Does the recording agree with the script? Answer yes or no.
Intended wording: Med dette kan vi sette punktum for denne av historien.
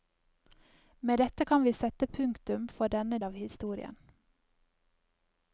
yes